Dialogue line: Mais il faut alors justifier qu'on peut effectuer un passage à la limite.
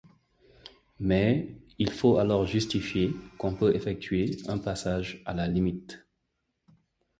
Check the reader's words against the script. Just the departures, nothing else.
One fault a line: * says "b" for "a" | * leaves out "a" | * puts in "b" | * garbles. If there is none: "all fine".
all fine